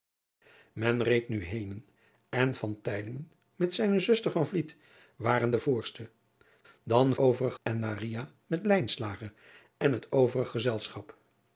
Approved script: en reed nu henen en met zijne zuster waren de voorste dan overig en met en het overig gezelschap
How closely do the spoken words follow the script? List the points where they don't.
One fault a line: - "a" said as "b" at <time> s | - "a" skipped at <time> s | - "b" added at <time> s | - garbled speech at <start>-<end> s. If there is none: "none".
none